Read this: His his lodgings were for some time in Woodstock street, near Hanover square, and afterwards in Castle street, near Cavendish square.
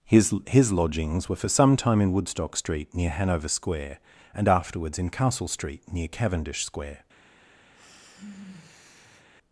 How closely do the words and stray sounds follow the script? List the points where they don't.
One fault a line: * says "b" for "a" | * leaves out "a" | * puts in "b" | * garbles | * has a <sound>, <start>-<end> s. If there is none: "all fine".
* has a sigh, 7.7-9.3 s